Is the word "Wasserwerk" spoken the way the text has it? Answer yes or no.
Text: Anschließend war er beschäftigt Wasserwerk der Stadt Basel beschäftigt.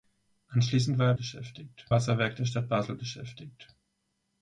yes